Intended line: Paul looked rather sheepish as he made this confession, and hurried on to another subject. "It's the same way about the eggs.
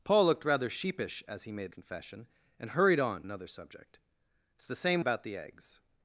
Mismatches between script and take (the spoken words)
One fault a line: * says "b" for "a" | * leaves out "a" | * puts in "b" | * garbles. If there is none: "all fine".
* leaves out "this"
* leaves out "to"
* leaves out "way"